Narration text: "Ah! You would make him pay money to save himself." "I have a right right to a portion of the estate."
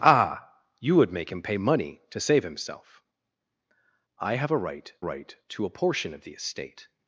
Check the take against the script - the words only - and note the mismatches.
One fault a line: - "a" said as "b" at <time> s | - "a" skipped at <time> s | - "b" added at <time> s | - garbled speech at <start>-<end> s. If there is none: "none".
none